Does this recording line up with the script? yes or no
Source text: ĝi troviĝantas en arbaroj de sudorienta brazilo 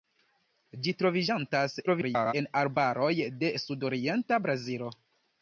no